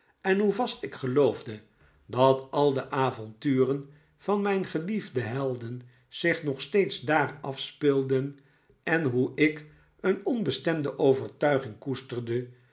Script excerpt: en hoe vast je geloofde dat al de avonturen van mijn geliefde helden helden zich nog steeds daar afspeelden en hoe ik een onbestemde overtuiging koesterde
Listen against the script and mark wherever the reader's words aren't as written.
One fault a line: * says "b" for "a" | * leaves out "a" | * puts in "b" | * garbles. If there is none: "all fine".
* says "ik" for "je"
* leaves out "helden"